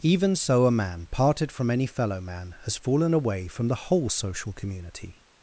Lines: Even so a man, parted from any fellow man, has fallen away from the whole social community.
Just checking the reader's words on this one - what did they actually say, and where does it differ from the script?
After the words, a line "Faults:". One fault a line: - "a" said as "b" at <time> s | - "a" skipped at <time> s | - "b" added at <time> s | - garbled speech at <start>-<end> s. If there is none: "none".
Even so a man, parted from any fellow man, has fallen away from the whole social community.
Faults:
none